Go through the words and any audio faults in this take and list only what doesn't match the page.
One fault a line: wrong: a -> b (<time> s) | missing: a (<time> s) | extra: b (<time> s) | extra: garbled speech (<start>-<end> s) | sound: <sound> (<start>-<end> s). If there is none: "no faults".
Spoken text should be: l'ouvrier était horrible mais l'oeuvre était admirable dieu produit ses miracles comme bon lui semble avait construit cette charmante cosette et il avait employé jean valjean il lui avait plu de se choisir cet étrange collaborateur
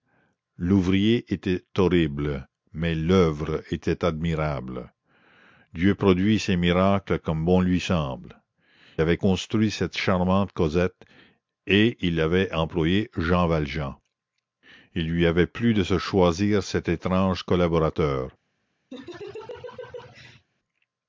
sound: laugh (18.9-20.5 s)